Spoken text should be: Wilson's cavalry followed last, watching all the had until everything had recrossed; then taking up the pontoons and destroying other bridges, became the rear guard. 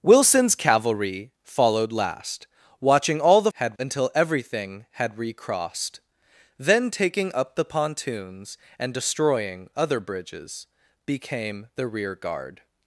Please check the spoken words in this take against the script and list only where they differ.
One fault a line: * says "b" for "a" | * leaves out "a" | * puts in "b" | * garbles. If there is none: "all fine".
all fine